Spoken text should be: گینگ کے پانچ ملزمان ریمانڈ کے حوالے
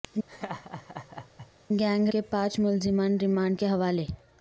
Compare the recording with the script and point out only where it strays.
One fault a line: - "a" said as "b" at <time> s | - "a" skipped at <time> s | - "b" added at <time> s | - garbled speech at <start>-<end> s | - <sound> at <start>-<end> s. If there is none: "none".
- laugh at 0.3-1.5 s